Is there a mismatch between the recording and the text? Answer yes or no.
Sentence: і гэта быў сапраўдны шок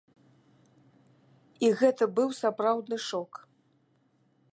no